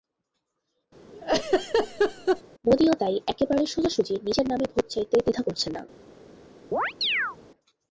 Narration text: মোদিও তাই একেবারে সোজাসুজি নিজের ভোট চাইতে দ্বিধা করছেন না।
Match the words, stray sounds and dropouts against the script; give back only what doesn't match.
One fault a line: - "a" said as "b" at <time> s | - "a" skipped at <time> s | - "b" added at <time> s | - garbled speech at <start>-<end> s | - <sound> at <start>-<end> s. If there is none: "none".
- laugh at 1.1-2.4 s
- "নামে" added at 4.5 s
- chirp at 6.7-7.4 s